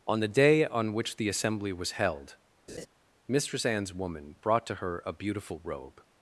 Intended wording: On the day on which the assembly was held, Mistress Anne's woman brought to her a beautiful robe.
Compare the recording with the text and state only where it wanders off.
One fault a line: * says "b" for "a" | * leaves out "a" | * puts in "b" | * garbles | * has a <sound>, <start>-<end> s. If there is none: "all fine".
* has a laugh, 2.7-2.9 s